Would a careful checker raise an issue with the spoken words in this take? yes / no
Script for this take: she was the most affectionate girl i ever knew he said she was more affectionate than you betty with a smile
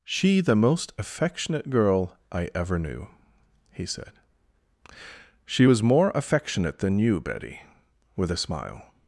yes